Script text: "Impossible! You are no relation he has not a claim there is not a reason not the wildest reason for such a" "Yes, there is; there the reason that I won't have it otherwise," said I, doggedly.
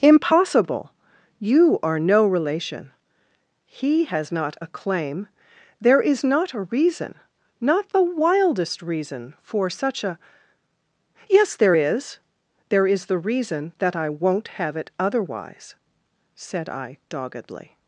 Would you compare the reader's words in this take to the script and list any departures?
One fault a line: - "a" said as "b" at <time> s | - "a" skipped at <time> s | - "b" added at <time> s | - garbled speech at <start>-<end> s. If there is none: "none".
- "is" added at 12.9 s